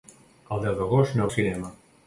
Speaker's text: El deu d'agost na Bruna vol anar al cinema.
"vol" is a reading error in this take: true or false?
true